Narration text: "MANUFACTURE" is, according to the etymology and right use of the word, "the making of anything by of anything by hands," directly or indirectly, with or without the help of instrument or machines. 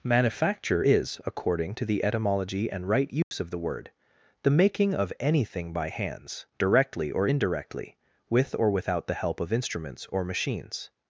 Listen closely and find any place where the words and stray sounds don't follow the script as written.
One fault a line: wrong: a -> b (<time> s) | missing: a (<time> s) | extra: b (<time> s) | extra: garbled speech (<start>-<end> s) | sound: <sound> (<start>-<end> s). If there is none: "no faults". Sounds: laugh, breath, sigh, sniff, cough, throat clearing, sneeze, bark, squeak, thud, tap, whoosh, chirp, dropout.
sound: dropout (3.2-3.3 s)
missing: of anything by (5.9 s)
wrong: instrument -> instruments (9.5 s)